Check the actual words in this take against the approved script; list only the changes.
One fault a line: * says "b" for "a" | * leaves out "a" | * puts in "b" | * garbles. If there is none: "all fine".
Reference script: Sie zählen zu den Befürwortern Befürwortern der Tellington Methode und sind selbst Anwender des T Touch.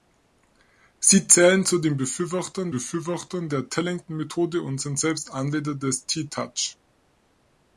all fine